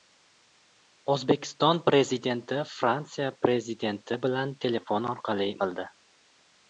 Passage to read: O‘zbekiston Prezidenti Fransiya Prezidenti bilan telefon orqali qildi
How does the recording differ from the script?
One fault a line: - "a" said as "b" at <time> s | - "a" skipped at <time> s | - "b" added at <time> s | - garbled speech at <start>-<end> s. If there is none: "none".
none